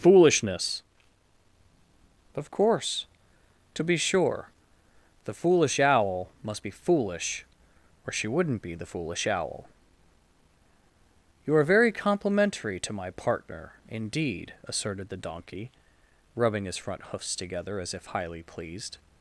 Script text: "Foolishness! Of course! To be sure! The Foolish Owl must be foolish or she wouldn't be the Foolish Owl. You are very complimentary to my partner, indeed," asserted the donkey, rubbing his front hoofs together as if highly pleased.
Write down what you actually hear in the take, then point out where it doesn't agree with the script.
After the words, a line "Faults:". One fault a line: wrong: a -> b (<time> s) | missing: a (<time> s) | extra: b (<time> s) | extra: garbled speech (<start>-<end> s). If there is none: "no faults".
"Foolishness! Of course! To be sure! The Foolish Owl must be foolish or she wouldn't be the Foolish Owl. You are very complimentary to my partner, indeed," asserted the donkey, rubbing his front hoofs together as if highly pleased.
Faults:
no faults